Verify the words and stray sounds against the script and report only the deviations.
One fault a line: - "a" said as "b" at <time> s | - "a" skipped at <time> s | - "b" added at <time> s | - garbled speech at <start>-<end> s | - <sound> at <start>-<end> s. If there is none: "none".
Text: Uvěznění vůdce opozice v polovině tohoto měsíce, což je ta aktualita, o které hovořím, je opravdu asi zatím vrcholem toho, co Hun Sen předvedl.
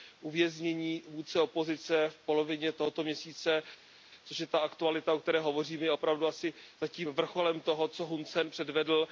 none